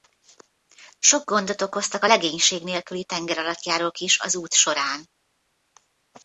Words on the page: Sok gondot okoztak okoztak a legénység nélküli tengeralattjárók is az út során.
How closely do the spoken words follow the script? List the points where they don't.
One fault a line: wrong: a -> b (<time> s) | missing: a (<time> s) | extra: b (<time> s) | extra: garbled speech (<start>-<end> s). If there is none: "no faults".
missing: okoztak (2.0 s)